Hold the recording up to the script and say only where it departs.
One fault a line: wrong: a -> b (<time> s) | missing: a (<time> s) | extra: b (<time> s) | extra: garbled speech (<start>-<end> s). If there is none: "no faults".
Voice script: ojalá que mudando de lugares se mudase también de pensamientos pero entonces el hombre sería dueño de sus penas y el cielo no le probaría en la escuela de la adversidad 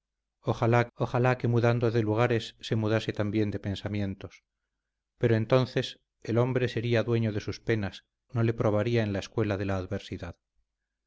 extra: ojalá (0.9 s)
missing: y el cielo (8.0 s)